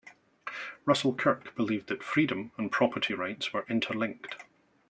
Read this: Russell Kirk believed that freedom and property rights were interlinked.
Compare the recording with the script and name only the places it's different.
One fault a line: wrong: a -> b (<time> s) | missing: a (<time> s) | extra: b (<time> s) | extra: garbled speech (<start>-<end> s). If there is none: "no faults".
no faults